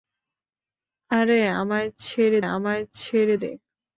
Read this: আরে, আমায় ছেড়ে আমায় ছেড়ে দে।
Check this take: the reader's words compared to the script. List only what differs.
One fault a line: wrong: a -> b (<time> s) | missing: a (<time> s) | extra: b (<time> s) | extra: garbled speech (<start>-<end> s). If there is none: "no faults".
no faults